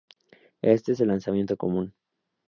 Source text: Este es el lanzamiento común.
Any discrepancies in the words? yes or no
no